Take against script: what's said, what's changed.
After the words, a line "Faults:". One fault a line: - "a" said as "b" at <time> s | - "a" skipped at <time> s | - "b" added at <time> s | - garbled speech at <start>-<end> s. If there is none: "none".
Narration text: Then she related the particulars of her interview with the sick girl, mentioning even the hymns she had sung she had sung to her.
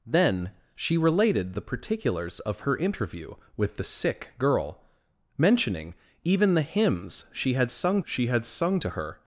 Then she related the particulars of her interview with the sick girl, mentioning even the hymns she had sung she had sung to her.
Faults:
none